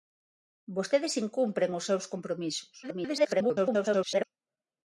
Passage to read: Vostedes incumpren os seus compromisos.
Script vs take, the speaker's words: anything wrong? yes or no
yes